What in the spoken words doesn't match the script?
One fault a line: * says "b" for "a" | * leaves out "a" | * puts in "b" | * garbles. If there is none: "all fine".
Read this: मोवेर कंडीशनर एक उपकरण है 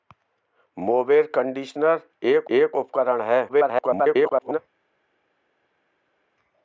* puts in "एक"
* garbles